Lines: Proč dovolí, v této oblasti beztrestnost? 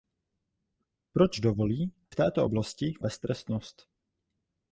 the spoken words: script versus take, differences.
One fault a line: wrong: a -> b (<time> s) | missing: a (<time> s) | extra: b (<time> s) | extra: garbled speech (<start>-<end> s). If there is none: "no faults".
no faults